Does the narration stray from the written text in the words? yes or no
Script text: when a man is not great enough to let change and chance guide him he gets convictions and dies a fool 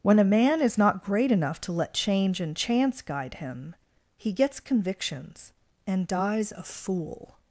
no